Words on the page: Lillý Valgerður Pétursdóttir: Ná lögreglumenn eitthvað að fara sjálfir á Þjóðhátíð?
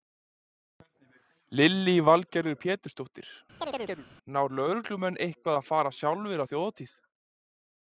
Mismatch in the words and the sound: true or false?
true